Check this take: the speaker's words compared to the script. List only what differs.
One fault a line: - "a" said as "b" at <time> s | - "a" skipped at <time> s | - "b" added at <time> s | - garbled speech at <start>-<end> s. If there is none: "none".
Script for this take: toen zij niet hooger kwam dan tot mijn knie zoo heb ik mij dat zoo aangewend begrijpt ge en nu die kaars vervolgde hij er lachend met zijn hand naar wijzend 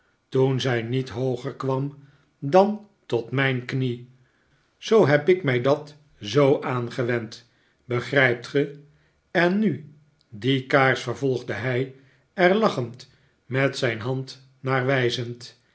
none